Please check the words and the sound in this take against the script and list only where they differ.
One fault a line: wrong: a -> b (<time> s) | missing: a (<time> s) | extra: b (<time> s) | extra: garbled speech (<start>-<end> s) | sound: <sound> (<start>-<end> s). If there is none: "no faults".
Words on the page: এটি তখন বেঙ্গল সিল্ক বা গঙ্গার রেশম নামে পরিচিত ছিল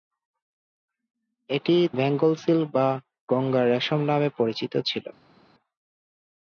missing: তখন (1.8 s)